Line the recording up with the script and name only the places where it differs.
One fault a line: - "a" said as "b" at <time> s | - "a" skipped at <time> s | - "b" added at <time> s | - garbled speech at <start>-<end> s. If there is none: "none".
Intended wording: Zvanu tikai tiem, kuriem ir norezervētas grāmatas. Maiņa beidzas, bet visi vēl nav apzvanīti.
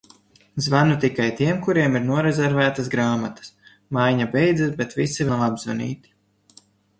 - "vēl" skipped at 5.3 s